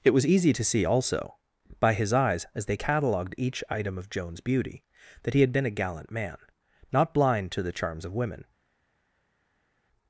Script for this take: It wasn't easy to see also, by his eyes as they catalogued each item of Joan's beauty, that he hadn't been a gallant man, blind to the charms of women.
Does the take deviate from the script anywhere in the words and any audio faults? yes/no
yes